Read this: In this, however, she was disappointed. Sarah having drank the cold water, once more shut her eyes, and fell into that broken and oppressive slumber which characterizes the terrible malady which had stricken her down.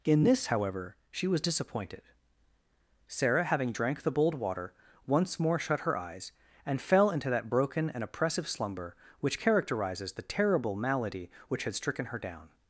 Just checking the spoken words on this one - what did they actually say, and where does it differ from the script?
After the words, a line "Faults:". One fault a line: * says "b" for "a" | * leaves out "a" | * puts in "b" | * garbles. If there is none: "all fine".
In this, however, she was disappointed. Sarah having drank the bold water, once more shut her eyes, and fell into that broken and oppressive slumber which characterizes the terrible malady which had stricken her down.
Faults:
* says "bold" for "cold"